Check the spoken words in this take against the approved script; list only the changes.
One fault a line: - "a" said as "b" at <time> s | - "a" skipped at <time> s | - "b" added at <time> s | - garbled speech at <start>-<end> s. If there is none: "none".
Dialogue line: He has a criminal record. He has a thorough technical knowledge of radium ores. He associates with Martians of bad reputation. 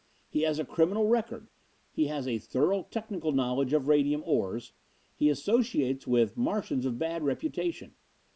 none